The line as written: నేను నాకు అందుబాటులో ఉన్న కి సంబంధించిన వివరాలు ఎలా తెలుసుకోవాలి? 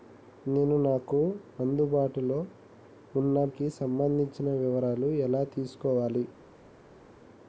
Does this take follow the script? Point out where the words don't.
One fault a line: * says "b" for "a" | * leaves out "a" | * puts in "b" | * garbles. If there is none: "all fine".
all fine